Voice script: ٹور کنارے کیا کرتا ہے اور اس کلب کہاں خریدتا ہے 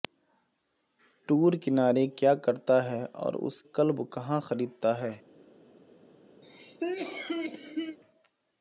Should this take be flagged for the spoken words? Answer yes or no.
no